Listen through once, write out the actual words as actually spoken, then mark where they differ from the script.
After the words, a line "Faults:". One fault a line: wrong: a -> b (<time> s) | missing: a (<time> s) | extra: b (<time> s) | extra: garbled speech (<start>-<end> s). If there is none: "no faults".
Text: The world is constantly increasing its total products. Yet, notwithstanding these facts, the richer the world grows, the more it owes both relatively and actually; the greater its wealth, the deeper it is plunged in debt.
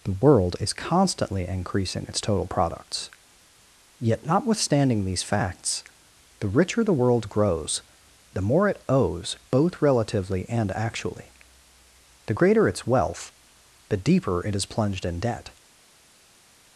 The world is constantly increasing its total products. Yet, notwithstanding these facts, the richer the world grows, the more it owes both relatively and actually; the greater its wealth, the deeper it is plunged in debt.
Faults:
no faults